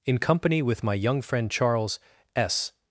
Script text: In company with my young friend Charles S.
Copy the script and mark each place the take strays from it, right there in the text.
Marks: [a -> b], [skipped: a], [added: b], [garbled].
In company with my young friend Charles S.